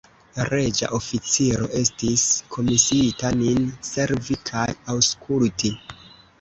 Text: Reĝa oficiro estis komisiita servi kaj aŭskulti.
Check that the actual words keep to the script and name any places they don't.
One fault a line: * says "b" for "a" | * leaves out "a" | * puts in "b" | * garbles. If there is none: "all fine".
* puts in "nin"